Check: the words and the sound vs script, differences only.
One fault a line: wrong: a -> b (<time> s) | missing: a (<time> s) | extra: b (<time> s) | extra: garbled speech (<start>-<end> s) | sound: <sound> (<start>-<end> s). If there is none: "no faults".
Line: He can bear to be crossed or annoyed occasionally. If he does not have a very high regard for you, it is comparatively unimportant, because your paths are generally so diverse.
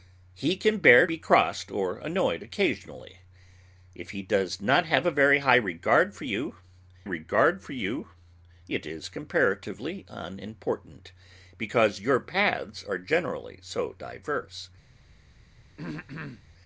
missing: to (1.1 s)
extra: regard for you (7.1 s)
sound: throat clearing (15.8-16.4 s)